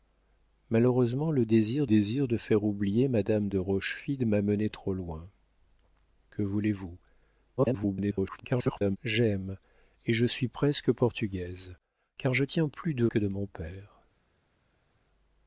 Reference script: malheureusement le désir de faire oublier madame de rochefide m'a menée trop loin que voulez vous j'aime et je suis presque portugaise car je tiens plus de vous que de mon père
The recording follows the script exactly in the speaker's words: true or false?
false